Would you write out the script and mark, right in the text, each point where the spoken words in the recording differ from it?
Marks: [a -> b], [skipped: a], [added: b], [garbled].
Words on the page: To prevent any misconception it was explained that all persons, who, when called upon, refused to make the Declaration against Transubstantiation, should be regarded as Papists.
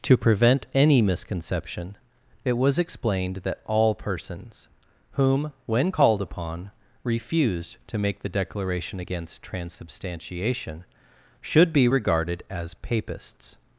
To prevent any misconception it was explained that all persons, [who, -> whom] when called upon, refused to make the Declaration against Transubstantiation, should be regarded as Papists.